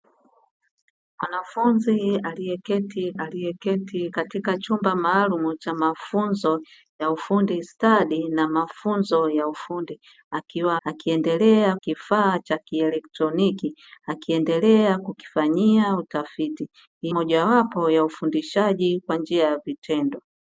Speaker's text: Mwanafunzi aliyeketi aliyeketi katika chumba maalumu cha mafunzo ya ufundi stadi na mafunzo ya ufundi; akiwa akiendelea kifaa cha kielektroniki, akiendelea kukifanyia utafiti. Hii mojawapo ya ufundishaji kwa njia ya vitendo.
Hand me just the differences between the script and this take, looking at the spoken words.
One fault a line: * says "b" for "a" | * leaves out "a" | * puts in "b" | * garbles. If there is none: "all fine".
all fine